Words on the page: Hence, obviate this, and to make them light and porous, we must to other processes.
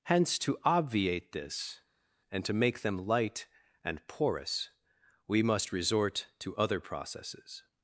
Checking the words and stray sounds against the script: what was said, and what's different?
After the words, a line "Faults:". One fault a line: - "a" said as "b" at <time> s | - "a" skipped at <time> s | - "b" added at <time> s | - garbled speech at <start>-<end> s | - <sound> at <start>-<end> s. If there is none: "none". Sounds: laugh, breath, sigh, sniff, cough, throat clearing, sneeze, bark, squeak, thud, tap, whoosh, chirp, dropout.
Hence, to obviate this, and to make them light and porous, we must resort to other processes.
Faults:
- "to" added at 0.4 s
- "resort" added at 5.7 s